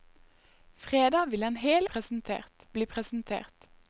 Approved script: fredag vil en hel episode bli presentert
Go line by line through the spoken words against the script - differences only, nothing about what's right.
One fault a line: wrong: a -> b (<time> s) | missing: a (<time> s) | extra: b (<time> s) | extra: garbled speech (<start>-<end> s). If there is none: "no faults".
wrong: episode -> presentert (1.8 s)